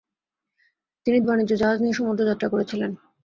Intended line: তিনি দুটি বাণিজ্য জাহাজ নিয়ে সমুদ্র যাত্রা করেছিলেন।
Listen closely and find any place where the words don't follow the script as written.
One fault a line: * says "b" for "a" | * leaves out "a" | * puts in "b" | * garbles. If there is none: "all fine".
* leaves out "দুটি"